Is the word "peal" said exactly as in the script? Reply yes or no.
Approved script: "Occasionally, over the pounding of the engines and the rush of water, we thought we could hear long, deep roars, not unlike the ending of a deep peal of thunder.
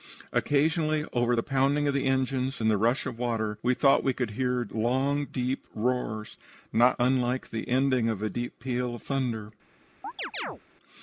yes